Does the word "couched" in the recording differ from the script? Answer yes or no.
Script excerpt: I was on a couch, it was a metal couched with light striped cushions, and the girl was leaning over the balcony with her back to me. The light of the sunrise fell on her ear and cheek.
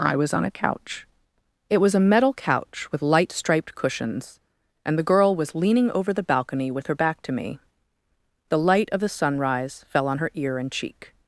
yes